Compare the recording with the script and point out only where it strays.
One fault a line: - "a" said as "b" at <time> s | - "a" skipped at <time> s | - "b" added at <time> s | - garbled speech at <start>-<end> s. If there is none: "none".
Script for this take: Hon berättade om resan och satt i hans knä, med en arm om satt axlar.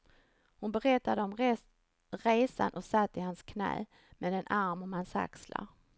- "satt" said as "hans" at 4.9 s